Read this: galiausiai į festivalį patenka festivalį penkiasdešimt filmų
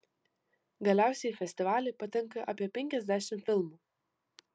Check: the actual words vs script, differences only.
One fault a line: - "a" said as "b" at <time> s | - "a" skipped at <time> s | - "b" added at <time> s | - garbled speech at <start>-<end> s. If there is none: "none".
- "festivalį" said as "apie" at 2.5 s